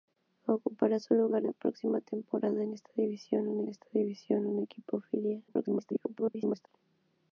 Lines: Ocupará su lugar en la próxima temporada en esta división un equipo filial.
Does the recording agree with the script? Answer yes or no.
no